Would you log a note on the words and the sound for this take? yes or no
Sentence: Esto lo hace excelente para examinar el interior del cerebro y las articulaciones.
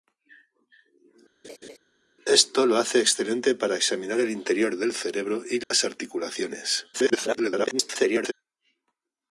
yes